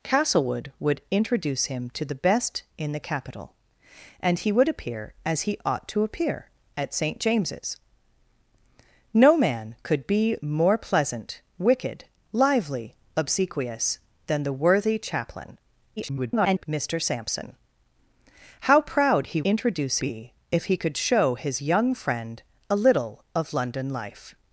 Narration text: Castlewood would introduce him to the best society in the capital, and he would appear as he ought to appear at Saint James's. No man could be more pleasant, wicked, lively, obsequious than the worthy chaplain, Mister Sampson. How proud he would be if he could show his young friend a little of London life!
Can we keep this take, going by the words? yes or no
no